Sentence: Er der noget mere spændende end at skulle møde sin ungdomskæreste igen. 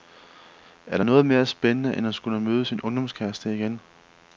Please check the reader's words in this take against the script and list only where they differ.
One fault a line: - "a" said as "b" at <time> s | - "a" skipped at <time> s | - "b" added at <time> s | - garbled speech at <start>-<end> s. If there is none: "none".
none